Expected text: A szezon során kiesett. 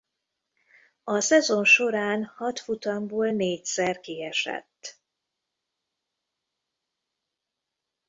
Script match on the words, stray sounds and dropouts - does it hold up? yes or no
no